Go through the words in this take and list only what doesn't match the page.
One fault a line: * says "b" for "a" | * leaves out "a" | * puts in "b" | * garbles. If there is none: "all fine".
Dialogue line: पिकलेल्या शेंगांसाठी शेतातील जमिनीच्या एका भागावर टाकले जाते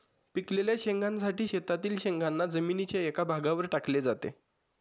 * puts in "शेंगांना"